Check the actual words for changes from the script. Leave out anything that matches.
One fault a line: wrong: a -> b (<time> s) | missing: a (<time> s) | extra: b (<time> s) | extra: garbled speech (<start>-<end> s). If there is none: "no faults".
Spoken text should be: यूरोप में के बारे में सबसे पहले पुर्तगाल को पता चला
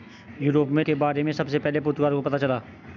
no faults